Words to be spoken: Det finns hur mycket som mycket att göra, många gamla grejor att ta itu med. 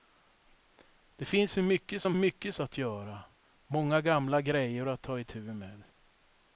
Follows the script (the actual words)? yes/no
yes